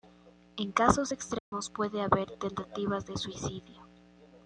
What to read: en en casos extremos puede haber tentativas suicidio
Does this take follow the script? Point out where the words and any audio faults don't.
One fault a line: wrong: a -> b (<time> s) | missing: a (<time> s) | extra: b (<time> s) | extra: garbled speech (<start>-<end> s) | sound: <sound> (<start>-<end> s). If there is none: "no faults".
missing: en (0.7 s)
sound: dropout (1.4-1.5 s)
extra: de (3.1 s)